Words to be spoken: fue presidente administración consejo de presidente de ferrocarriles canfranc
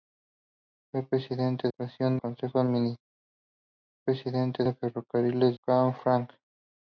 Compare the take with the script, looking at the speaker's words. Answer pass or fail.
pass